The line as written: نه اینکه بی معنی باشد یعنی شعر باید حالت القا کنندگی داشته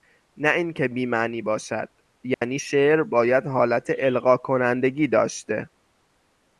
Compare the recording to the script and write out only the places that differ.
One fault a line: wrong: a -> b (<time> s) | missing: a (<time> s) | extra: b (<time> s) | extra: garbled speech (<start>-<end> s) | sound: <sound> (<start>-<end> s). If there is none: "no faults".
sound: dropout (2.3-2.4 s)